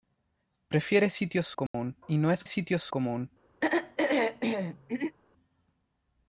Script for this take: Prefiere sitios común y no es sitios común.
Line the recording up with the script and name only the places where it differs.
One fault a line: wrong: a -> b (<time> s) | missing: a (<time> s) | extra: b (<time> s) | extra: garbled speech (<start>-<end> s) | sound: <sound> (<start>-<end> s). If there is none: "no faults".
sound: dropout (1.7-1.7 s)
sound: throat clearing (3.6-5.2 s)